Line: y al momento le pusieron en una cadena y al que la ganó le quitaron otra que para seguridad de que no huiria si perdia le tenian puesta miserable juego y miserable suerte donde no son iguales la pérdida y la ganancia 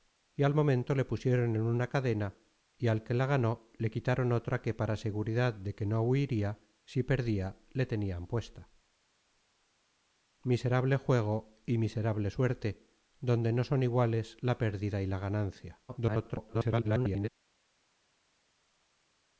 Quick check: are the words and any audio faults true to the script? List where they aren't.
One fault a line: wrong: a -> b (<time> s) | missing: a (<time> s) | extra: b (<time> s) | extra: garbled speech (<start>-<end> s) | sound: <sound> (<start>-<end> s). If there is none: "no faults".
extra: garbled speech (15.9-17.3 s)